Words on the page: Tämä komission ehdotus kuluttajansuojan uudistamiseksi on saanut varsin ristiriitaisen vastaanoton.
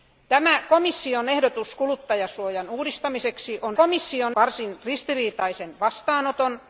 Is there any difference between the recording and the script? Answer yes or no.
yes